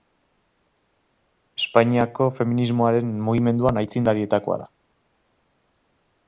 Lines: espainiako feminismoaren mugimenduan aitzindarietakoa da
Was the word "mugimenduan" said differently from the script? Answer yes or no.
no